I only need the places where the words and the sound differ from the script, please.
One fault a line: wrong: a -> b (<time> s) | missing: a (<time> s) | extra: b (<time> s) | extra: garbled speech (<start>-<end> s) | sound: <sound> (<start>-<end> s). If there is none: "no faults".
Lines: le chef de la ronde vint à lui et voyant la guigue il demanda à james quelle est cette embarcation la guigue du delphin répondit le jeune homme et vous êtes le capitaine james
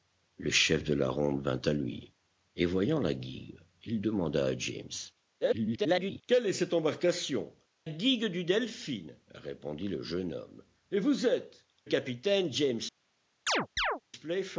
extra: garbled speech (5.4-6.2 s)
missing: la (7.5 s)
missing: le (11.7 s)
sound: chirp (13.5-14.0 s)